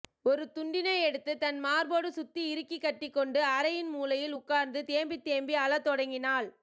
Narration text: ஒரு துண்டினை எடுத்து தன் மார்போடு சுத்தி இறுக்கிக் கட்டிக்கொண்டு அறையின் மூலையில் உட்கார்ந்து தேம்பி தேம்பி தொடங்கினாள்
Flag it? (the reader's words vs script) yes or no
yes